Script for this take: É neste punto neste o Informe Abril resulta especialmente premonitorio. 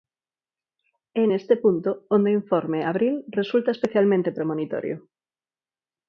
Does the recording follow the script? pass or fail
fail